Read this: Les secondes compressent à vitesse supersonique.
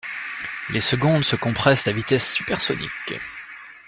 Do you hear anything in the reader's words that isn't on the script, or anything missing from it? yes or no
yes